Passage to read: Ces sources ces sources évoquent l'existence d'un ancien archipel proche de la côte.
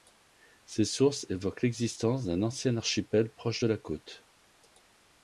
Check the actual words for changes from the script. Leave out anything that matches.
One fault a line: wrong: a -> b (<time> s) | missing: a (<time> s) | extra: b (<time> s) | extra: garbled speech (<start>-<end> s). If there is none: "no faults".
missing: ces sources (1.3 s)